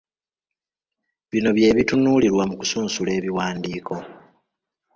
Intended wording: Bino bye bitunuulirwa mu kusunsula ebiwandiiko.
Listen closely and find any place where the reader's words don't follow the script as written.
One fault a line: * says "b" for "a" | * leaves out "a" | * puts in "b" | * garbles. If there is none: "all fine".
all fine